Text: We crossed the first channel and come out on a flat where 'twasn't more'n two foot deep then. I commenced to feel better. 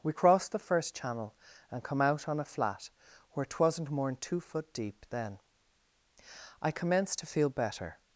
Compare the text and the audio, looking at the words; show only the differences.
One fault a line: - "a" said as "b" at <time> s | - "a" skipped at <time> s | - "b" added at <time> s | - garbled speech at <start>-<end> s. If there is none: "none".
none